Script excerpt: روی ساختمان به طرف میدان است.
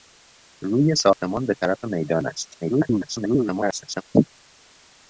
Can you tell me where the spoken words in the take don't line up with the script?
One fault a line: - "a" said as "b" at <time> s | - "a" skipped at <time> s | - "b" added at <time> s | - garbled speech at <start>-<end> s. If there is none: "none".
- garbled speech at 2.6-4.0 s